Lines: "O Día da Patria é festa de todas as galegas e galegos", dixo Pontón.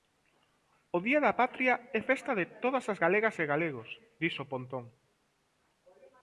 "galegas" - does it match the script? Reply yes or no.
yes